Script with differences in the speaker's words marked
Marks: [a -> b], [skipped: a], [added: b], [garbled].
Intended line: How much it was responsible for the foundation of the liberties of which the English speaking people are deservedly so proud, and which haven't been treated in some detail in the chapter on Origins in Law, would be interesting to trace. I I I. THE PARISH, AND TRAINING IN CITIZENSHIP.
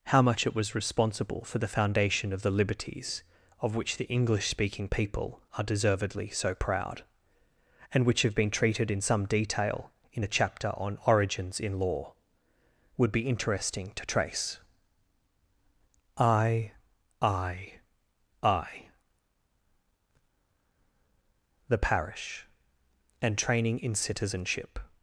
How much it was responsible for the foundation of the liberties of which the English speaking people are deservedly so proud, and which [haven't -> have] been treated in some detail in the chapter on Origins in Law, would be interesting to trace. I I I. THE PARISH, AND TRAINING IN CITIZENSHIP.